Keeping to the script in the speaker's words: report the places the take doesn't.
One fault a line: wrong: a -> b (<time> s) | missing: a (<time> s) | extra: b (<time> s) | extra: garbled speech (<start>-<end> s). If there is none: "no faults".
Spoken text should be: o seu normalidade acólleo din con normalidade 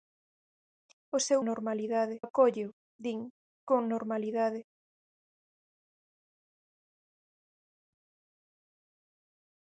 no faults